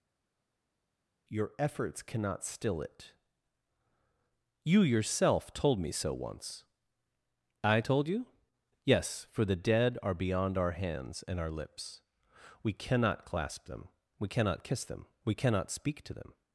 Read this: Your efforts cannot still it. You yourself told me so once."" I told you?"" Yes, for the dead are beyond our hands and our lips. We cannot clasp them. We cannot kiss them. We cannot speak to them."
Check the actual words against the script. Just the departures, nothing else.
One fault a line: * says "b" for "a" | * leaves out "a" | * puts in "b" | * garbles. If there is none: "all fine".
all fine